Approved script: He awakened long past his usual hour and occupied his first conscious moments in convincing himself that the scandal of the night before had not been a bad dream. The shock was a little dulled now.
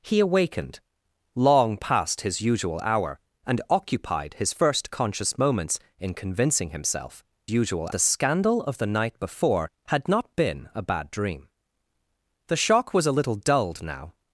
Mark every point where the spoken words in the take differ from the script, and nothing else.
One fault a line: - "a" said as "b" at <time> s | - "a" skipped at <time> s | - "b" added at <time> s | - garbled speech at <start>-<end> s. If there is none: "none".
- "that" said as "usual" at 7.5 s